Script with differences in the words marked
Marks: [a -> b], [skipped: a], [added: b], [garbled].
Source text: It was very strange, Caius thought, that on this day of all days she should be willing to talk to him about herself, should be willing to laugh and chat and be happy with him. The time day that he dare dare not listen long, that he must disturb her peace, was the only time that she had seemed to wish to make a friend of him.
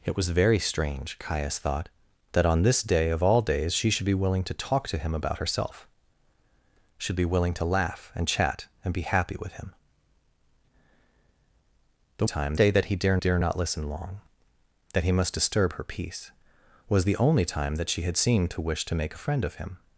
It was very strange, Caius thought, that on this day of all days she should be willing to talk to him about herself, should be willing to laugh and chat and be happy with him. The time day that he dare dare not listen long, that he must disturb her peace, was the only time that she had seemed to wish to make a friend of him.